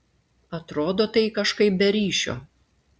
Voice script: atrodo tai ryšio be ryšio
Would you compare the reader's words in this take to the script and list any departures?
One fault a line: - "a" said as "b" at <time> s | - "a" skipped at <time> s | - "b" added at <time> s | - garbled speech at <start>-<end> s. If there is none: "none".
- "ryšio" said as "kažkaip" at 1.4 s